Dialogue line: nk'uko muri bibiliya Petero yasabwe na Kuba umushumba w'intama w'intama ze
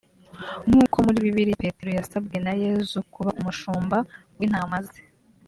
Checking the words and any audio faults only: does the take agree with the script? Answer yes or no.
no